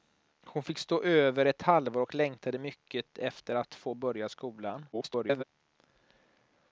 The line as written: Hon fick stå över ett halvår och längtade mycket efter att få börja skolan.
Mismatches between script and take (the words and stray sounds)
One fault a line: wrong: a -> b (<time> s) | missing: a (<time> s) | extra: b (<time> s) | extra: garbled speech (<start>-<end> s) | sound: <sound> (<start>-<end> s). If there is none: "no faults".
extra: garbled speech (4.9-5.4 s)